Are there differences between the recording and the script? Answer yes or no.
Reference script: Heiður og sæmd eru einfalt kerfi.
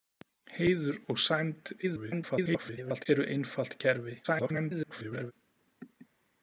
yes